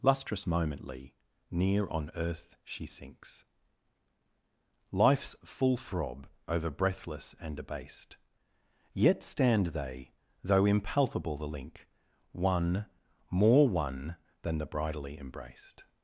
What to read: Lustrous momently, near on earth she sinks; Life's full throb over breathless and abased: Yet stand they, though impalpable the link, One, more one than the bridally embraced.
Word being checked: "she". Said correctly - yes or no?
yes